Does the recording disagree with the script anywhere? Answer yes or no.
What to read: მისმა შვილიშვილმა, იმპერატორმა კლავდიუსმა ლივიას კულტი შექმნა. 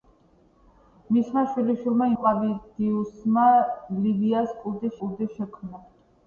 yes